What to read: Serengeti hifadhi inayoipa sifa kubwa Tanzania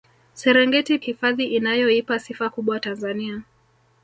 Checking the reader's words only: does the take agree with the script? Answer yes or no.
yes